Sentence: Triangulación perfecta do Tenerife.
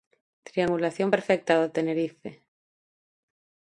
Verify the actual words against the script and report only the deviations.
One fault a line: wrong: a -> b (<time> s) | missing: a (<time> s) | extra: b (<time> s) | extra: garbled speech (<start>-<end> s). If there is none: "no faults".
no faults